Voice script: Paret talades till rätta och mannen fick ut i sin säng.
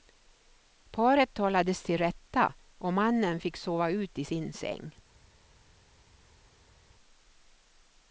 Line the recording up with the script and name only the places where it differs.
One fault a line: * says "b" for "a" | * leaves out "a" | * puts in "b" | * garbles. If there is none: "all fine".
* puts in "sova"